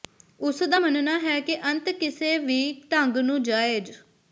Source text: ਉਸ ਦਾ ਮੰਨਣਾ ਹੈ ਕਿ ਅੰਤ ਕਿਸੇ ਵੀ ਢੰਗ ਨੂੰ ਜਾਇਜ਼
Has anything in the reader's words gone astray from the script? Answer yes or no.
no